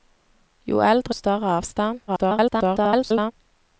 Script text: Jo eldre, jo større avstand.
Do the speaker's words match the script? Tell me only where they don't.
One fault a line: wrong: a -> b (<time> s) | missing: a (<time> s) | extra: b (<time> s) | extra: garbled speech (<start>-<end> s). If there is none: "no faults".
missing: jo (1.1 s)
extra: garbled speech (2.1-3.3 s)